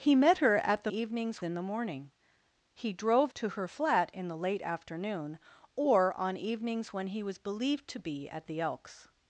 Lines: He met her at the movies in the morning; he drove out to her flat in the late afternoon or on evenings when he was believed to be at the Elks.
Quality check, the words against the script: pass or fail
fail